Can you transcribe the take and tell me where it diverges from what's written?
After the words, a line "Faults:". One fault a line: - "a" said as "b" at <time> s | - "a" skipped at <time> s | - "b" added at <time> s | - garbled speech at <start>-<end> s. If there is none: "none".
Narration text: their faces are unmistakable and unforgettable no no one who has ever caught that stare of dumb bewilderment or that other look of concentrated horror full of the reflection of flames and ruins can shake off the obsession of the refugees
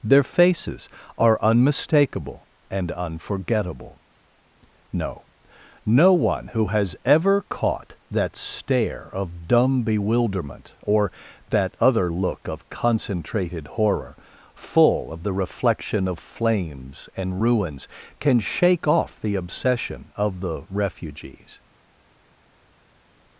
their faces are unmistakable and unforgettable no no one who has ever caught that stare of dumb bewilderment or that other look of concentrated horror full of the reflection of flames and ruins can shake off the obsession of the refugees
Faults:
none